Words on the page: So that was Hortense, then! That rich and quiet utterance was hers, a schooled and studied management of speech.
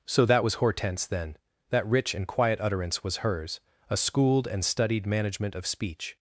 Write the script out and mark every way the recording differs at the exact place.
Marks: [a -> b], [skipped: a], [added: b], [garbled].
So that was Hortense, then! That rich and quiet utterance was hers, a schooled and studied management of speech.